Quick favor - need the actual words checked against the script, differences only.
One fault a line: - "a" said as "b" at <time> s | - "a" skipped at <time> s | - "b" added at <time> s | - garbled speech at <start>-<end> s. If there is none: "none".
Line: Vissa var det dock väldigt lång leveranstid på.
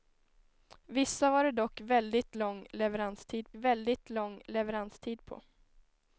- "väldigt lång leveranstid" added at 3.6 s